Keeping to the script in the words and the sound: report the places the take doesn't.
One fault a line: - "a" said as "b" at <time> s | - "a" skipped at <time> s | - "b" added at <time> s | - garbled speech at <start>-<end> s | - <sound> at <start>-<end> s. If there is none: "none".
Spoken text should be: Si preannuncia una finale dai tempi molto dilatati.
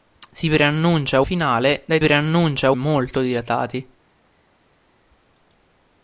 - "una" skipped at 1.2 s
- "tempi" said as "preannuncia" at 2.0 s